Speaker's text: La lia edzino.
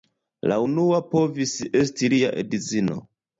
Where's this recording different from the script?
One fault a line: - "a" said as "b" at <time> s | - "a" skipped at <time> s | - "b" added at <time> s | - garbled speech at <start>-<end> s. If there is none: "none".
- "unua povis esti" added at 0.7 s